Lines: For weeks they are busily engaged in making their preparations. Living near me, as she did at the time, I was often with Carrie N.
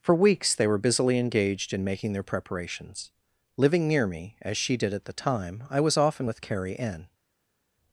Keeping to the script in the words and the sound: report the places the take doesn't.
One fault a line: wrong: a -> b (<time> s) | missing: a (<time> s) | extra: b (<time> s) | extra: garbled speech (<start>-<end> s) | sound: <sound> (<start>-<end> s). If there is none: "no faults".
wrong: are -> were (0.7 s)